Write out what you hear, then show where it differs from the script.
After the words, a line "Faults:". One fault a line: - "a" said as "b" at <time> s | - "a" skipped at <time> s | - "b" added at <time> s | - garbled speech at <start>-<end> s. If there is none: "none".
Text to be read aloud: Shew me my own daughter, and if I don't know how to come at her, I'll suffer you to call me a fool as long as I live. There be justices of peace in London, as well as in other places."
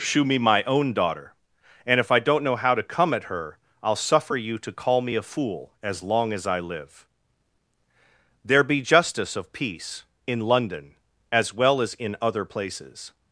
Shew me my own daughter, and if I don't know how to come at her, I'll suffer you to call me a fool as long as I live. There be justice of peace in London, as well as in other places."
Faults:
- "justices" said as "justice" at 8.8 s